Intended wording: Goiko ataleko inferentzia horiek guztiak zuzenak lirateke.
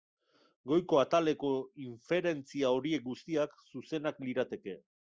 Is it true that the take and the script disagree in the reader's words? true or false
false